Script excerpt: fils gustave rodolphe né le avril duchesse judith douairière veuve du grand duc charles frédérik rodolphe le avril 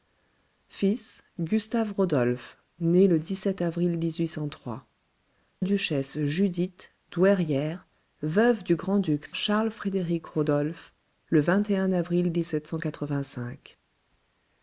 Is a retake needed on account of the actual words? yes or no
no